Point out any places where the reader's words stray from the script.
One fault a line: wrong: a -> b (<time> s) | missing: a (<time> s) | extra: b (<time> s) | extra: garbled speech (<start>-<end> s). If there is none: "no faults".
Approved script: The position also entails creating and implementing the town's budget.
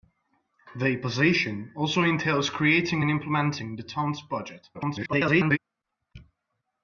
extra: garbled speech (4.7-5.6 s)